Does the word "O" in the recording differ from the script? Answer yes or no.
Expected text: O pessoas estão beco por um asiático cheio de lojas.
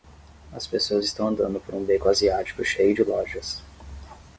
yes